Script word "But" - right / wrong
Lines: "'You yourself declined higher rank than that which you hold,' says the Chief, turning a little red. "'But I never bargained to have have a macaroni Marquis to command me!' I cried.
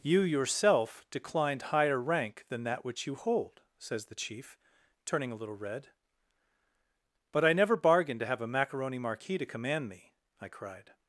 right